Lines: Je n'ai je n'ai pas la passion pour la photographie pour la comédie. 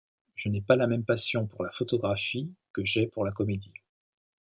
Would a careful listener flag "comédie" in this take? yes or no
no